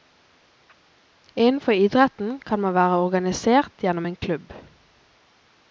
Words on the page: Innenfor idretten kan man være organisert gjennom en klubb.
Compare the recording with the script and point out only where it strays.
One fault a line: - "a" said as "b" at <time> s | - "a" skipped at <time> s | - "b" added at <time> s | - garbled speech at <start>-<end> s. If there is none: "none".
none